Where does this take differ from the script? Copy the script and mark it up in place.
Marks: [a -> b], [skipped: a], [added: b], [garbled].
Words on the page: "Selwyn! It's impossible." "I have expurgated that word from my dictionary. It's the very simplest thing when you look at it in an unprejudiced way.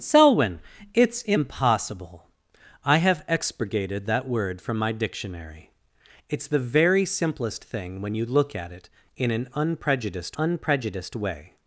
"Selwyn! It's impossible." "I have expurgated that word from my dictionary. It's the very simplest thing when you look at it in an unprejudiced [added: unprejudiced] way.